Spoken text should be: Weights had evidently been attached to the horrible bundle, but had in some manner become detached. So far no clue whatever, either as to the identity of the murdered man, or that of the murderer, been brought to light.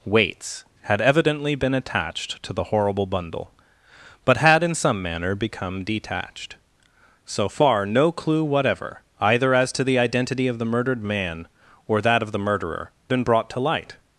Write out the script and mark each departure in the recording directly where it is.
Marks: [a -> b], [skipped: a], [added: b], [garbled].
Weights had evidently been attached to the horrible bundle, but had in some manner become detached. So far no clue whatever, either as to the identity of the murdered man, or that of the murderer, been brought to light.